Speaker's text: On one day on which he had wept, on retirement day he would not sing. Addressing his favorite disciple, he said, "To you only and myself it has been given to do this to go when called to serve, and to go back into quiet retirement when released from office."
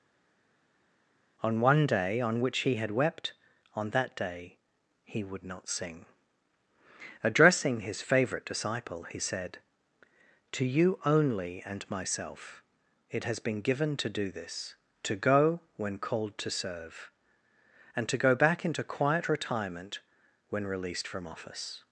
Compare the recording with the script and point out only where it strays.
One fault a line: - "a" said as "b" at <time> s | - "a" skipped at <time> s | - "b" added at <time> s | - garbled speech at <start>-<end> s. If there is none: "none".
- "retirement" said as "that" at 3.9 s